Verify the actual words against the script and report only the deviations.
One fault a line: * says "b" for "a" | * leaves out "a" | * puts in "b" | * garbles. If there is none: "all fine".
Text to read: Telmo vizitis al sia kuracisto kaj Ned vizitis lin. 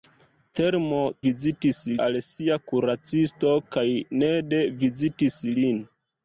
all fine